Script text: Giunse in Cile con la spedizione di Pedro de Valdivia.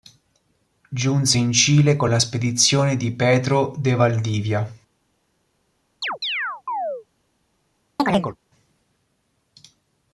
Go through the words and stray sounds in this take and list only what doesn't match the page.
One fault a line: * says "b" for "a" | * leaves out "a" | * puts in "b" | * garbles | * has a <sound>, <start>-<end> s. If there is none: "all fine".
* has a chirp, 6.0-7.1 s
* has a chirp, 8.0-8.4 s